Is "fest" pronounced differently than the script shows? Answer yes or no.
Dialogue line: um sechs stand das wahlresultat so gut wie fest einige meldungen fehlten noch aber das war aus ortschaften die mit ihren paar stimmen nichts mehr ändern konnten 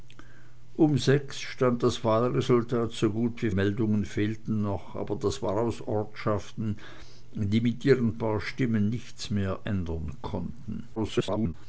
yes